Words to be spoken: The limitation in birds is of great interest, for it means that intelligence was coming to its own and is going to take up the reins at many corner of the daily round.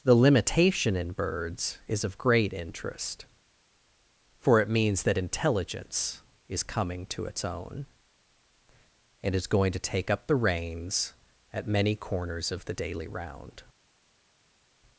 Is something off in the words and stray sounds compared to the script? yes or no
yes